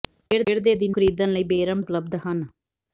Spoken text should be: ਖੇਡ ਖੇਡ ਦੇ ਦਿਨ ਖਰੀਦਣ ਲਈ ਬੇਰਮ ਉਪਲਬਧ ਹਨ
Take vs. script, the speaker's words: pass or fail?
pass